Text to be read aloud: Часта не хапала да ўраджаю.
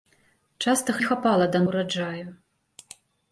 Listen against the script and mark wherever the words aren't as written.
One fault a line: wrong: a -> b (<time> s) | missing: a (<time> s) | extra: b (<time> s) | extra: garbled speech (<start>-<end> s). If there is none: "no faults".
no faults